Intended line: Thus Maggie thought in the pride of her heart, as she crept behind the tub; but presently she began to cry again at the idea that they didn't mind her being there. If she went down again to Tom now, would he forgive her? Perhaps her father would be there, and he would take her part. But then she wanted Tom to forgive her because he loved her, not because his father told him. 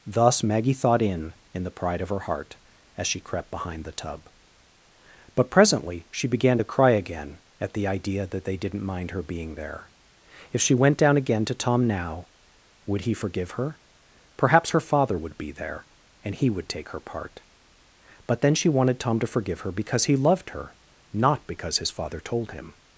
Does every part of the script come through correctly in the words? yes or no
no